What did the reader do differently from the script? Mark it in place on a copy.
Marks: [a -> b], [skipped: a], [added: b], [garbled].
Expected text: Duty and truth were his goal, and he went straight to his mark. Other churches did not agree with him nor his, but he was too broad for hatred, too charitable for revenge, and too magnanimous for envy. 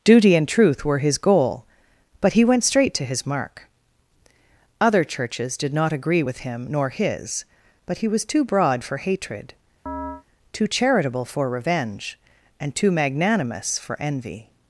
Duty and truth were his goal, [and -> but] he went straight to his mark. Other churches did not agree with him nor his, but he was too broad for hatred, too charitable for revenge, and too magnanimous for envy.